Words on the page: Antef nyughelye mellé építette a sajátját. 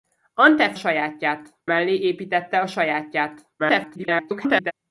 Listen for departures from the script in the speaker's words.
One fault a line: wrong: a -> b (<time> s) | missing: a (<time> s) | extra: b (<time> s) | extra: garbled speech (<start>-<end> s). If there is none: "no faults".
wrong: nyughelye -> sajátját (0.7 s)
extra: garbled speech (3.6-4.7 s)